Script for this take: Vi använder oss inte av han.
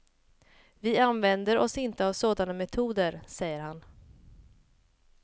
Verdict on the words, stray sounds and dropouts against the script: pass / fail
fail